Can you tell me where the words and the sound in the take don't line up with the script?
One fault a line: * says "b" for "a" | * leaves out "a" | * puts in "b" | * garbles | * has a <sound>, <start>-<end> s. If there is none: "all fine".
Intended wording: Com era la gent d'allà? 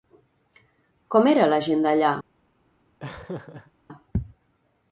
* has a laugh, 3.0-3.7 s